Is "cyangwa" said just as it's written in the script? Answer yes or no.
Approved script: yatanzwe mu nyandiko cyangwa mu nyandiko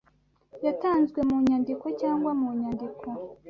yes